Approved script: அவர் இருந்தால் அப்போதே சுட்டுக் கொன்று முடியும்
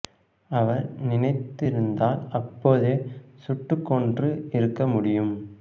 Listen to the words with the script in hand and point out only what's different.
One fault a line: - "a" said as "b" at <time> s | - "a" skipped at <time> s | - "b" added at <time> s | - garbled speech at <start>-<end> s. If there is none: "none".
- "நினைத்து" added at 1.0 s
- "இருக்க" added at 4.5 s